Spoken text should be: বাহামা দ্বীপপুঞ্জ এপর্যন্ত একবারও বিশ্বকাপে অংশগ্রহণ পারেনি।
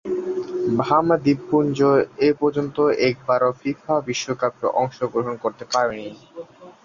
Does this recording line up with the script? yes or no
no